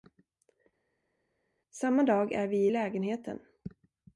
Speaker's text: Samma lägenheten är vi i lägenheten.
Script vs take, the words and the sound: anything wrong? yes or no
yes